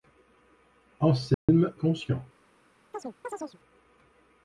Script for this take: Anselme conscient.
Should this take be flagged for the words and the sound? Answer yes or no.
yes